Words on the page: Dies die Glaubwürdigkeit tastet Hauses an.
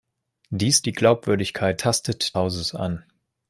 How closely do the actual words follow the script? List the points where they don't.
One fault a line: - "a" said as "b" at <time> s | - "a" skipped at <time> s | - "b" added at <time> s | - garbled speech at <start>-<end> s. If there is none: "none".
none